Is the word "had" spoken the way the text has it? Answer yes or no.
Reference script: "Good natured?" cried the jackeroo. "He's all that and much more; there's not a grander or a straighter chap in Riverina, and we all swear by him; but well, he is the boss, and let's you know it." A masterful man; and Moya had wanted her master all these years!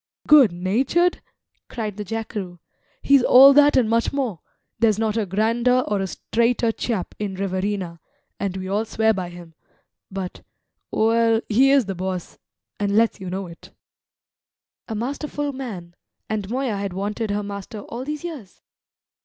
yes